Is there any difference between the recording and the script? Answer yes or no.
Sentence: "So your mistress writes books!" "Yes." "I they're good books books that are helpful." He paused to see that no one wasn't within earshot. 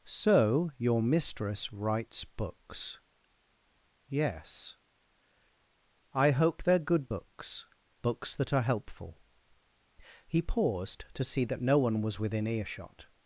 yes